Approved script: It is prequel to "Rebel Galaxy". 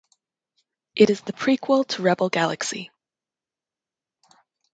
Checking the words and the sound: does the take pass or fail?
fail